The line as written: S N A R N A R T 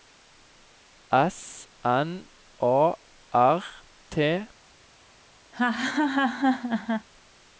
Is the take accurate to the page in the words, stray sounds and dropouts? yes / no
no